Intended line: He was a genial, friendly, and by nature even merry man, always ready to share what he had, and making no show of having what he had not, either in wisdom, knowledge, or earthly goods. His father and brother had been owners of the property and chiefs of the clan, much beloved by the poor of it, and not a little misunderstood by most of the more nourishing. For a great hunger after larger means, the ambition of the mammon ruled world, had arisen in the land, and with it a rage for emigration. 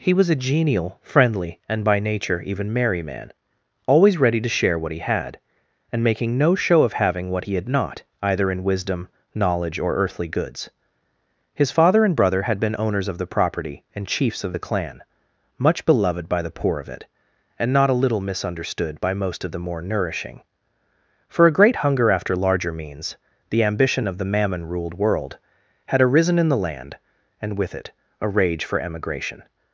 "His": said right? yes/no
yes